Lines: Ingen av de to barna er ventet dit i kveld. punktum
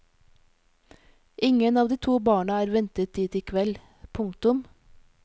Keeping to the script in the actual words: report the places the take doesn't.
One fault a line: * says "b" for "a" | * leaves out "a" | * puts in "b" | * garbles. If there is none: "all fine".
all fine